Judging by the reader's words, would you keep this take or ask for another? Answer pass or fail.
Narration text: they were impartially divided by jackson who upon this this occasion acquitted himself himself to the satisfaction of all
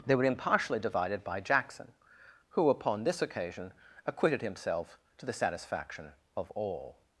fail